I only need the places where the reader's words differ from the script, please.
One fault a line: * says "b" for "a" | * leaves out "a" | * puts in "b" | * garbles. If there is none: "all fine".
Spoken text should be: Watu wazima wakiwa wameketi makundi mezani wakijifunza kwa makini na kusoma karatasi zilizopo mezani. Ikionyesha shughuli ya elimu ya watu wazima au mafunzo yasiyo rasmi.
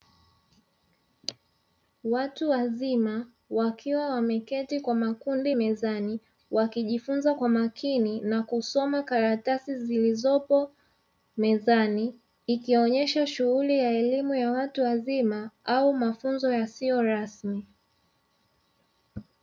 * puts in "kwa"